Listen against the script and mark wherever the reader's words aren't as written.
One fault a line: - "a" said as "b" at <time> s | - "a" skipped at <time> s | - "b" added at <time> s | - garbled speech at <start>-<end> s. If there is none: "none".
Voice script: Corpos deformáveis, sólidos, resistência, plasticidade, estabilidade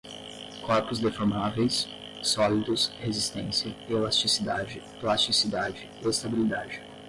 - "elasticidade" added at 3.9 s